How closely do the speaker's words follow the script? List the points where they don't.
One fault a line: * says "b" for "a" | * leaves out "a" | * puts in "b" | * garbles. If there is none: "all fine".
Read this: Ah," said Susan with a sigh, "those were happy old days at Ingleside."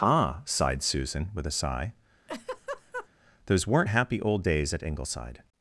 * says "sighed" for "said"
* says "weren't" for "were"